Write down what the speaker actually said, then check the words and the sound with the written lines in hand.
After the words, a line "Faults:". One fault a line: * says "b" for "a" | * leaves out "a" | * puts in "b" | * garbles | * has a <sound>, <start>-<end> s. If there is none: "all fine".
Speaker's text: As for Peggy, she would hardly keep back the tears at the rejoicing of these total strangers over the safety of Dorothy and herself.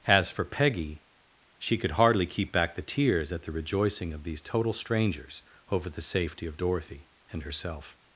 As for Peggy, she could hardly keep back the tears at the rejoicing of these total strangers over the safety of Dorothy and herself.
Faults:
* says "could" for "would"